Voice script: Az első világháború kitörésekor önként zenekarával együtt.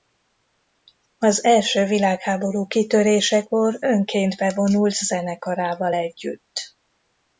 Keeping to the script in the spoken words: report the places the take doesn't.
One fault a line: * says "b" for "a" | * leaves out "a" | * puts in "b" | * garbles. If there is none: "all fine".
* puts in "bevonult"